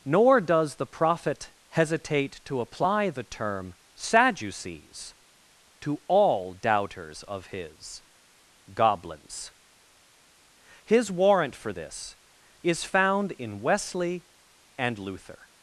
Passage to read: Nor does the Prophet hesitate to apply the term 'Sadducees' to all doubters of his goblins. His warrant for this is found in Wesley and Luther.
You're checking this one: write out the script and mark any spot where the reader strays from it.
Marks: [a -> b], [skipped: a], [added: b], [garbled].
Nor does the Prophet hesitate to apply the term 'Sadducees' to all doubters of his goblins. His warrant for this is found in Wesley and Luther.